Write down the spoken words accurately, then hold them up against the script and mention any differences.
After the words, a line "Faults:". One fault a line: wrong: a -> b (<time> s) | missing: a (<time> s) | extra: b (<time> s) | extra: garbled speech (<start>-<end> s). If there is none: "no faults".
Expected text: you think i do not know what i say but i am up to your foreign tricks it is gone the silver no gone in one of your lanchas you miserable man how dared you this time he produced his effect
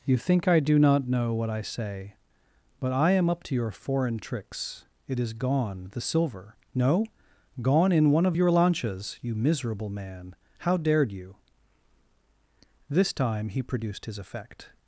you think i do not know what i say but i am up to your foreign tricks it is gone the silver no gone in one of your lanchas you miserable man how dared you this time he produced his effect
Faults:
no faults